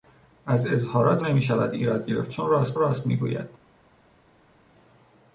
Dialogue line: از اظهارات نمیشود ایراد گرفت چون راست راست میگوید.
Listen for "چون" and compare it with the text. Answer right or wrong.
right